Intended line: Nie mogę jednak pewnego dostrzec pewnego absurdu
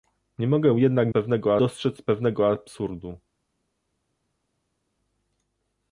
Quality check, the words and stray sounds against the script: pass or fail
pass